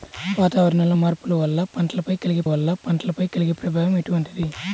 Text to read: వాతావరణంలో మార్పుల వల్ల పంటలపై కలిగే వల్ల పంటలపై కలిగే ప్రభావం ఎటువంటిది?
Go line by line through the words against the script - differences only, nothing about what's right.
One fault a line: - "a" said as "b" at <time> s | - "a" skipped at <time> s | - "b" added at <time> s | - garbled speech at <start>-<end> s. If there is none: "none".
none